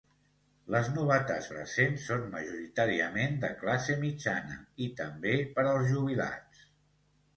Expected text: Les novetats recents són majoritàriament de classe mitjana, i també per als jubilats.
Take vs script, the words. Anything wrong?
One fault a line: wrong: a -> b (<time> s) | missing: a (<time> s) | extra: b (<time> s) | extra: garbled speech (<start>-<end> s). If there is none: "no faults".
no faults